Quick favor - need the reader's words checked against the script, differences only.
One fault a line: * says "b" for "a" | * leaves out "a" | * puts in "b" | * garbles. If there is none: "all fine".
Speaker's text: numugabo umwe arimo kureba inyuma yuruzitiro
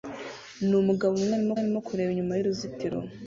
* puts in "arimo"